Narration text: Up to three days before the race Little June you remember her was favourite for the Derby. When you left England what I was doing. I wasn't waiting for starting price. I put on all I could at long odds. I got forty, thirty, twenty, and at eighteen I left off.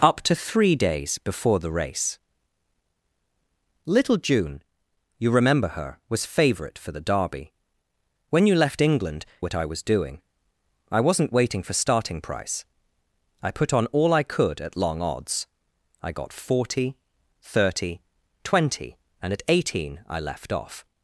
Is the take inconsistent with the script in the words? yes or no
no